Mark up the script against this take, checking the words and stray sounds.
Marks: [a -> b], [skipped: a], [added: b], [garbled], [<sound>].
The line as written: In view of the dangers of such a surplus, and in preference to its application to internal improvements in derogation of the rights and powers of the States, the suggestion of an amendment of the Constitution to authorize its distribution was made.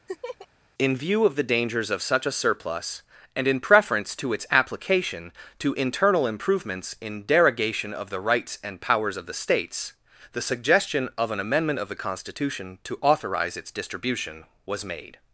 [laugh] In view of the dangers of such a surplus, and in preference to its application to internal improvements in derogation of the rights and powers of the States, the suggestion of an amendment of the Constitution to authorize its distribution was made.